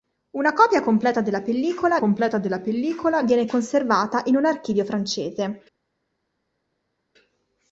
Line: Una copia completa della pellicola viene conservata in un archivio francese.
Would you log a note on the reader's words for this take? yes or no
yes